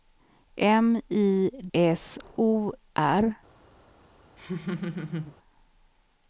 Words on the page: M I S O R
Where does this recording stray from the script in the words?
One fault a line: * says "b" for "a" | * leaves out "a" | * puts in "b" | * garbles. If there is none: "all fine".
all fine